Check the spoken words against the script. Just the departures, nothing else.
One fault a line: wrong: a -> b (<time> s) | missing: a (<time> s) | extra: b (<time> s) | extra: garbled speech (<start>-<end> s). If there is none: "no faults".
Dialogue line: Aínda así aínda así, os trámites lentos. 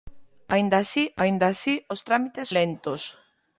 no faults